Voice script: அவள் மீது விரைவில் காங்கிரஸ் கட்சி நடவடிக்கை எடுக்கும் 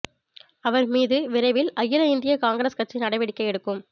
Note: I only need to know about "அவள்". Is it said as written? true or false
false